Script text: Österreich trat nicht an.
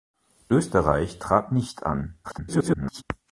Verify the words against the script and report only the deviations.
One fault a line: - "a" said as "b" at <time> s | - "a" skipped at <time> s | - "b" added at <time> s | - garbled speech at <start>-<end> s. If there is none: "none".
- garbled speech at 2.2-3.0 s